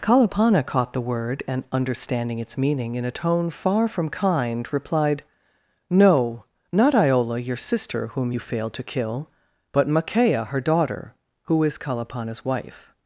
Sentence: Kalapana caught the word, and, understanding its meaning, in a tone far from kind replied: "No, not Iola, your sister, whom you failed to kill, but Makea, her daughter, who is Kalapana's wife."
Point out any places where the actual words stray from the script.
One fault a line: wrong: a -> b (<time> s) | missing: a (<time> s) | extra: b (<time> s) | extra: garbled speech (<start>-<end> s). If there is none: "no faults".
no faults